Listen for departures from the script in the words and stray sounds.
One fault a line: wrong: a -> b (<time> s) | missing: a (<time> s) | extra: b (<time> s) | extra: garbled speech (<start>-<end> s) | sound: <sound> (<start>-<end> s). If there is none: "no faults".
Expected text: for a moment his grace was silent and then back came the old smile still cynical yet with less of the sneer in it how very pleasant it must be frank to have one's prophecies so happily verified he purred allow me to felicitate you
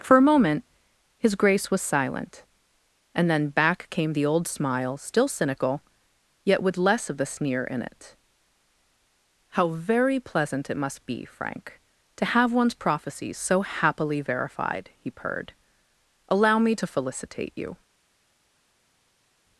no faults